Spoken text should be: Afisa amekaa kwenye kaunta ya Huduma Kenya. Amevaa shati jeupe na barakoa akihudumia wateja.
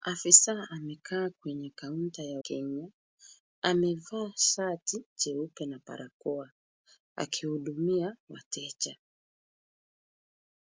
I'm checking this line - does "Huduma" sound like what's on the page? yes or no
no